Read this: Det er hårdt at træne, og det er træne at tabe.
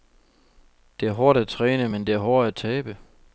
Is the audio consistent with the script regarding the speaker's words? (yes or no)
no